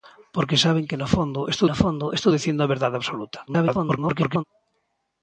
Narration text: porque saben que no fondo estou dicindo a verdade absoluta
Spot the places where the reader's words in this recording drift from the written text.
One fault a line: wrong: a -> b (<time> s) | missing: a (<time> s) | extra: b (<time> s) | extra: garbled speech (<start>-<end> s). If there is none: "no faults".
extra: no fondo estou (1.7 s)
extra: garbled speech (3.5-4.4 s)